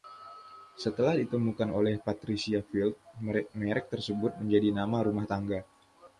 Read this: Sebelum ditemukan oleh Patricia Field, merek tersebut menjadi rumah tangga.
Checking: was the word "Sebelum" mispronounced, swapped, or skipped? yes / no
yes